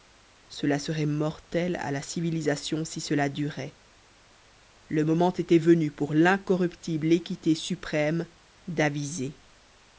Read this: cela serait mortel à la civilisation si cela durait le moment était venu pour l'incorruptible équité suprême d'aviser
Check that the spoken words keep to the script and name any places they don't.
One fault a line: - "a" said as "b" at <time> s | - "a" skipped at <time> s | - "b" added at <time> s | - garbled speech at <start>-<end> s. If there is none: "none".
none